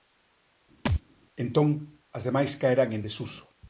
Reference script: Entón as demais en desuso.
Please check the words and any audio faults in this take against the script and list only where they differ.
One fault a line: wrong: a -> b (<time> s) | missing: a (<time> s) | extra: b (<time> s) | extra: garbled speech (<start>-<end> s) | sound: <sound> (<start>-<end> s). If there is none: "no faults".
sound: thud (0.9-1.0 s)
extra: caerán (2.6 s)